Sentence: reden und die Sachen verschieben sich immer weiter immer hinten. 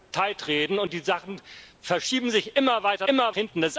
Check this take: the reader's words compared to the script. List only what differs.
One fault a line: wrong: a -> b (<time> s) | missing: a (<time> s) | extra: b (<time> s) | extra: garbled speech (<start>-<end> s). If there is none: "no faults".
no faults